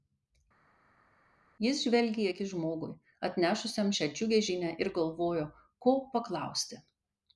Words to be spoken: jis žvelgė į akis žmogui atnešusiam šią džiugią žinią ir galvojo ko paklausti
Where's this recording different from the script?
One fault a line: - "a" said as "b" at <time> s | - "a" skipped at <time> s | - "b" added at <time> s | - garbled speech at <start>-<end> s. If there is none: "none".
none